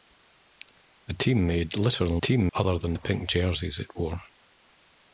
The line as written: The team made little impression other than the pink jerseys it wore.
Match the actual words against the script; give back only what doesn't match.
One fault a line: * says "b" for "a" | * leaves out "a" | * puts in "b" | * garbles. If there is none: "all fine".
* says "team" for "impression"